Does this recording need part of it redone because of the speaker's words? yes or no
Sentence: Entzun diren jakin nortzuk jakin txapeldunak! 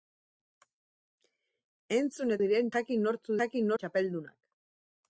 no